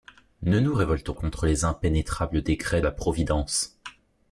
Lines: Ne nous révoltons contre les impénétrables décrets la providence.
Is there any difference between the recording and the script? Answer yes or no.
no